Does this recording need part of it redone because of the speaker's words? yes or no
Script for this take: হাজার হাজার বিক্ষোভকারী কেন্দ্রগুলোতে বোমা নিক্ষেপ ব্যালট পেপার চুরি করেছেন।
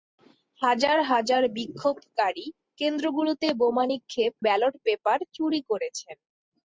no